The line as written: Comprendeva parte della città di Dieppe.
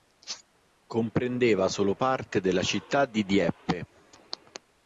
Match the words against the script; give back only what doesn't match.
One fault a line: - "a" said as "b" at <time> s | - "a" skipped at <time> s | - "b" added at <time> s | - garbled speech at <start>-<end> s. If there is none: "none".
- "solo" added at 1.7 s